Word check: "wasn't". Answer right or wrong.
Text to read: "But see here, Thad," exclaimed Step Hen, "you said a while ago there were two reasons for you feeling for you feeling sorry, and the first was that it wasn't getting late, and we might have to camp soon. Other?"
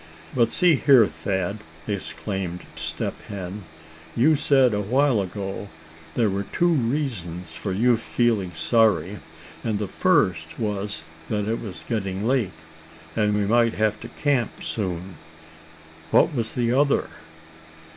wrong